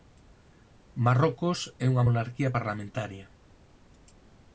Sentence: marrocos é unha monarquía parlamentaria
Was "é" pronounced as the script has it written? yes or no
yes